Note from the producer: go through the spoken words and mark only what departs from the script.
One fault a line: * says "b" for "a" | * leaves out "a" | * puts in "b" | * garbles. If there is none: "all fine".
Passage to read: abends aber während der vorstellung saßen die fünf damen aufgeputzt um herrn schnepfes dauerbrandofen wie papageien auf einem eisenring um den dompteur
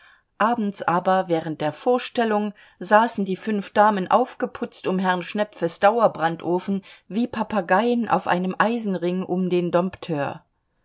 all fine